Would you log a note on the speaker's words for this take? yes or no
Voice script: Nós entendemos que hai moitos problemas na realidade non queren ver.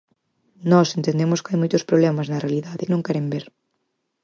no